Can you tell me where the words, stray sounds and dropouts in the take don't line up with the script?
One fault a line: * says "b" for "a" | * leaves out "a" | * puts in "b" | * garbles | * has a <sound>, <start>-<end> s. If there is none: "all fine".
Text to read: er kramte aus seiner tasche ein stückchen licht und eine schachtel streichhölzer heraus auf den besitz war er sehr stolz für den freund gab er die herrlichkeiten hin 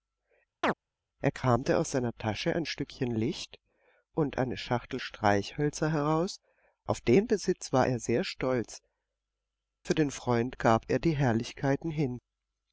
* has a chirp, 0.6-0.7 s